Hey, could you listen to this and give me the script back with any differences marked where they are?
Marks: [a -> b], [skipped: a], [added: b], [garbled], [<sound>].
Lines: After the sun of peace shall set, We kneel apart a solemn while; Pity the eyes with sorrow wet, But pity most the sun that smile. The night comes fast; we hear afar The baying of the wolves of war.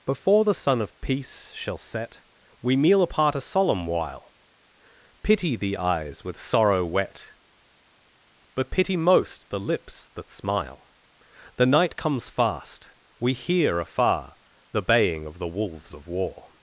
[After -> Before] the sun of peace shall set, We kneel apart a solemn while; Pity the eyes with sorrow wet, But pity most the [sun -> lips] that smile. The night comes fast; we hear afar The baying of the wolves of war.